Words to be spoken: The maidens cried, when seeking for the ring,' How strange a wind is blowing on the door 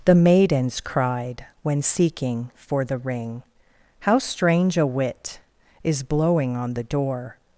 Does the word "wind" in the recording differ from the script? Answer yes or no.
yes